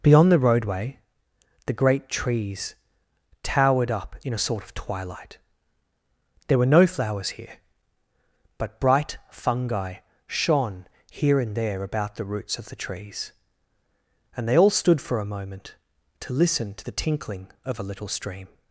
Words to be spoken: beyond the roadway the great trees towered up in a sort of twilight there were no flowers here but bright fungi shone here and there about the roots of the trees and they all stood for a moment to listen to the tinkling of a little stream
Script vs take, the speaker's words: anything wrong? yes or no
no